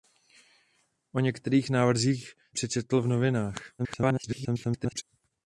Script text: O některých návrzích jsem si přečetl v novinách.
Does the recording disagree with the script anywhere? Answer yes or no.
yes